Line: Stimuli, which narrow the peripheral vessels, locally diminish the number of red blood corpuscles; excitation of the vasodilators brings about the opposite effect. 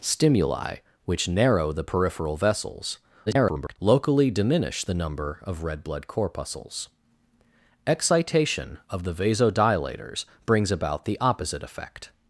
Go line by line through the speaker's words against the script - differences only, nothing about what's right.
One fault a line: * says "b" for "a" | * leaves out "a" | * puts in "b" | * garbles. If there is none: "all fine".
* garbles